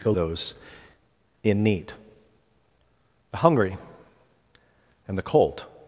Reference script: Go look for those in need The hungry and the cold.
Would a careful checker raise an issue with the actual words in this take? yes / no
yes